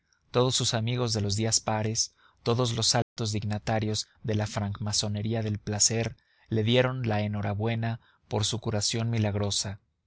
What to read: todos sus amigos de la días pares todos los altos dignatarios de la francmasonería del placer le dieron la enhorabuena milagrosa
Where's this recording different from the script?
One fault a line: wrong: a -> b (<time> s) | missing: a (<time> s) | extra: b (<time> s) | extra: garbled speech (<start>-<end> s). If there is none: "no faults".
wrong: la -> los (1.2 s)
extra: por su curación (8.3 s)